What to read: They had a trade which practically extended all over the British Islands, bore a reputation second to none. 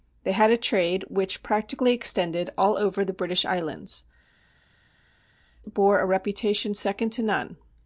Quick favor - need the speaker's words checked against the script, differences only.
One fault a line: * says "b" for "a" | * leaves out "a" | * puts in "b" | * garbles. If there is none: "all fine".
all fine